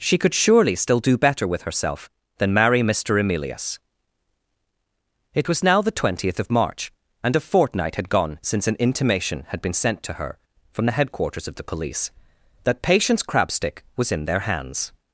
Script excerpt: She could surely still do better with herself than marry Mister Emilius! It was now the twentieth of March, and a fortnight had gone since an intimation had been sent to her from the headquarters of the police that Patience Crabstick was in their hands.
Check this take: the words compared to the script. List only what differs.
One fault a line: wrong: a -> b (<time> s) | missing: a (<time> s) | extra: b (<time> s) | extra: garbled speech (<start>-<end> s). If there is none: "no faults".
no faults